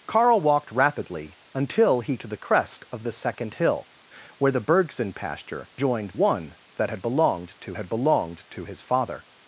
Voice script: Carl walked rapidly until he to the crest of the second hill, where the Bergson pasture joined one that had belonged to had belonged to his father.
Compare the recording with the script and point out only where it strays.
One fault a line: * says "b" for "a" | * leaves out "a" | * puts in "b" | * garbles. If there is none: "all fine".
all fine